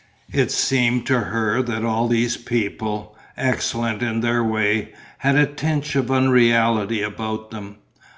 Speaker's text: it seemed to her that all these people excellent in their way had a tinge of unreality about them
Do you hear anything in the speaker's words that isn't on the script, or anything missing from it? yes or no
no